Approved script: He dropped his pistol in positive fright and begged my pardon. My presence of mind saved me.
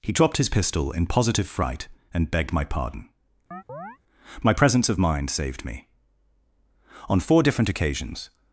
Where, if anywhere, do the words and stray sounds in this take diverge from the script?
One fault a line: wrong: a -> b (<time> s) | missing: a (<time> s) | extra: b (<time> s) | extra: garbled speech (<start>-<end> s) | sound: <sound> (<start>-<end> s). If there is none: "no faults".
sound: chirp (3.5-4.0 s)
extra: On four different occasions (7.1 s)